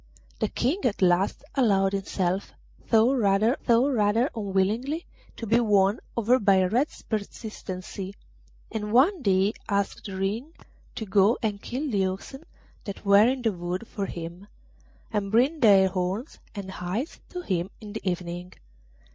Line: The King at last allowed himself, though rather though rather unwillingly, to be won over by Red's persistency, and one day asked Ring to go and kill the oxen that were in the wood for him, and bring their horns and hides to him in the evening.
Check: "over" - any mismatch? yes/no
no